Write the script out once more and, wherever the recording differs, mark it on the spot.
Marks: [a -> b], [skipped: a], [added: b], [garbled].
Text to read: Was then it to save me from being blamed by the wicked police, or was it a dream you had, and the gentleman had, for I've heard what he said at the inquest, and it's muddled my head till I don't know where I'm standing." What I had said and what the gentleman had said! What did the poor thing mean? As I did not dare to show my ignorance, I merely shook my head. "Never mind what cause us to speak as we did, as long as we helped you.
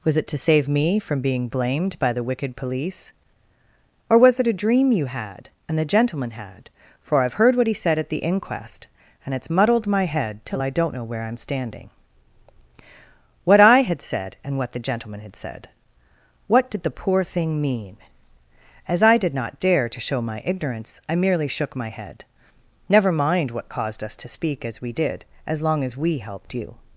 Was [skipped: then] it to save me from being blamed by the wicked police, or was it a dream you had, and the gentleman had, for I've heard what he said at the inquest, and it's muddled my head till I don't know where I'm standing." What I had said and what the gentleman had said! What did the poor thing mean? As I did not dare to show my ignorance, I merely shook my head. "Never mind what [cause -> caused] us to speak as we did, as long as we helped you.